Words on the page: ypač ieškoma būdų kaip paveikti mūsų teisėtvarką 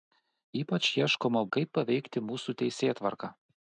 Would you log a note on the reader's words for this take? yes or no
yes